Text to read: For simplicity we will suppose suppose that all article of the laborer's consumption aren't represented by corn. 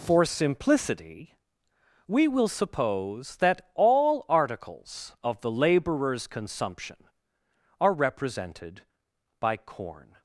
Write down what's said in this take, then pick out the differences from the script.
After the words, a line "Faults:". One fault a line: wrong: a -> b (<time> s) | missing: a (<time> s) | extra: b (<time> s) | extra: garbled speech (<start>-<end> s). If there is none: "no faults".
For simplicity we will suppose that all articles of the laborer's consumption are represented by corn.
Faults:
missing: suppose (3.4 s)
wrong: article -> articles (4.3 s)
wrong: aren't -> are (7.8 s)